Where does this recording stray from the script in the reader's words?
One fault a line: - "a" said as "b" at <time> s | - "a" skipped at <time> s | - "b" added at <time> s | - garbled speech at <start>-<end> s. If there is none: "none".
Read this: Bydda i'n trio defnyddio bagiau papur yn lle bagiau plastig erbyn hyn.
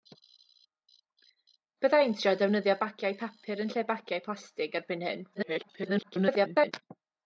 - garbled speech at 5.3-6.7 s